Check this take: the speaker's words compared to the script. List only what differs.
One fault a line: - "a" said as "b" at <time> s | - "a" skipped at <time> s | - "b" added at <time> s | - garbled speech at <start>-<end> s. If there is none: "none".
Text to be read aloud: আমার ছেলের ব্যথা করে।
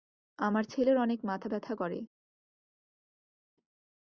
- "অনেক মাথা" added at 1.0 s